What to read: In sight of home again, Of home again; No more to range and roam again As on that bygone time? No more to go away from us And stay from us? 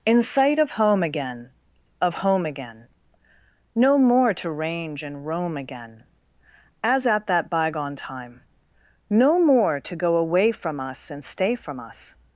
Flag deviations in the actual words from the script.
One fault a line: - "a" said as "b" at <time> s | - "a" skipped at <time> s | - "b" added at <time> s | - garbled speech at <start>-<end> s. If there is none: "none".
- "on" said as "at" at 7.0 s